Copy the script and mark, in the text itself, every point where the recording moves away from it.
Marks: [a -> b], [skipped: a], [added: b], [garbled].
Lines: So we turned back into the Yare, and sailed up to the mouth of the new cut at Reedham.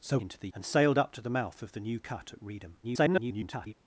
So [skipped: we turned back] into the [skipped: Yare,] and sailed up to the mouth of the new cut at Reedham. [garbled]